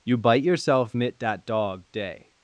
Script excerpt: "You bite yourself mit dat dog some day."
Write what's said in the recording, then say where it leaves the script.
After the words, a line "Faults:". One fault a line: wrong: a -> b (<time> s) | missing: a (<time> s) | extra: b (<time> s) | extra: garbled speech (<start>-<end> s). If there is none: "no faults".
"You bite yourself mit dat dog day."
Faults:
missing: some (1.8 s)